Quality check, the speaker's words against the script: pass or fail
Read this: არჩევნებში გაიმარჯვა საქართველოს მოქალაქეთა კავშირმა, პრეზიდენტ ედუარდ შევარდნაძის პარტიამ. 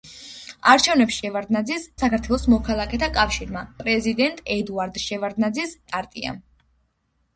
fail